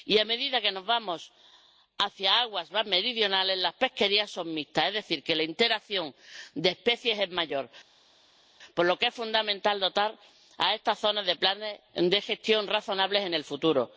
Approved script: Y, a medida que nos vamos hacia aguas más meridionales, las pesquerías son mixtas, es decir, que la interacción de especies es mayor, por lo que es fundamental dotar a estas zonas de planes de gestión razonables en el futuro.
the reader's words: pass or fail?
pass